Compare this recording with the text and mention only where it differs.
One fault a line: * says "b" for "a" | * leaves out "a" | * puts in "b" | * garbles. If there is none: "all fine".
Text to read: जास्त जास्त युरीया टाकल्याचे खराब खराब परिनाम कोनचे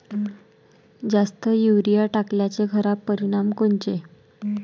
* leaves out "जास्त"
* leaves out "खराब"